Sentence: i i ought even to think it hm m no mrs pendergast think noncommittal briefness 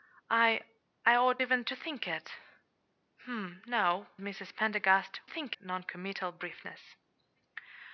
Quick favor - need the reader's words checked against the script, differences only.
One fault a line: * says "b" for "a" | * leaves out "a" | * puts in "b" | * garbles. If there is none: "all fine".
all fine